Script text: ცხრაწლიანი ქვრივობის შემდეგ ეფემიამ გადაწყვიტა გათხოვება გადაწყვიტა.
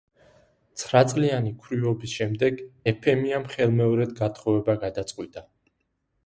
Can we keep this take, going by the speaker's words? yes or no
no